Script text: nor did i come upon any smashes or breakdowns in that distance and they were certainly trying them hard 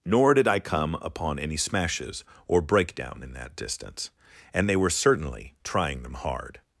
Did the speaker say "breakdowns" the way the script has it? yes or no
no